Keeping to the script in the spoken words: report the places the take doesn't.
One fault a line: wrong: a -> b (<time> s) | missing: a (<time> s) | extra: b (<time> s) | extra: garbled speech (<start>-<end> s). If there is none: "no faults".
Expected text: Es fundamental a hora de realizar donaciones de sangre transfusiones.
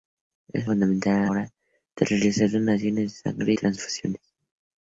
no faults